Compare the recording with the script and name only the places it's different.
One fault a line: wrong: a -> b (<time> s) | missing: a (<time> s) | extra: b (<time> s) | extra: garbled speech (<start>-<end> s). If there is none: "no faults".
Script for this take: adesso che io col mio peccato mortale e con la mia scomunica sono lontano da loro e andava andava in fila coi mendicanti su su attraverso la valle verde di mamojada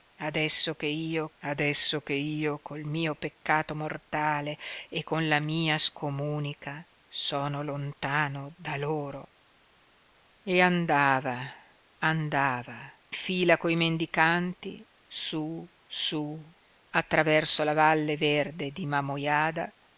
extra: adesso che io (1.4 s)
missing: in (12.9 s)